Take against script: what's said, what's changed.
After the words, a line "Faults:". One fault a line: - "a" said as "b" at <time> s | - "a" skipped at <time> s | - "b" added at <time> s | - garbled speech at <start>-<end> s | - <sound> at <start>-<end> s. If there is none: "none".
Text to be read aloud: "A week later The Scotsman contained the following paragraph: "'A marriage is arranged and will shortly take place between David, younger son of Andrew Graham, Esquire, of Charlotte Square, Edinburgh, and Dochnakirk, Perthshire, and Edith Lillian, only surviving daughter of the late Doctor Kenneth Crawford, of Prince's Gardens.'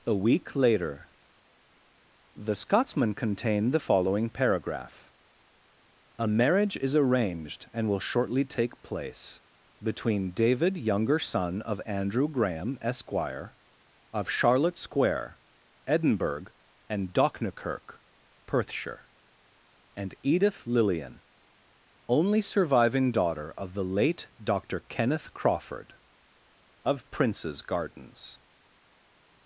"A week later The Scotsman contained the following paragraph: "'A marriage is arranged and will shortly take place between David, younger son of Andrew Graham, Esquire, of Charlotte Square, Edinburgh, and Dochnakirk, Perthshire, and Edith Lillian, only surviving daughter of the late Doctor Kenneth Crawford, of Prince's Gardens.'
Faults:
none